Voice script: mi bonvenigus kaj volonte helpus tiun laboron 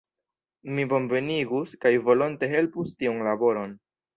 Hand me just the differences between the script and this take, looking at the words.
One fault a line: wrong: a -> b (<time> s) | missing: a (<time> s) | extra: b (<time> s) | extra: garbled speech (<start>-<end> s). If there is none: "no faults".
no faults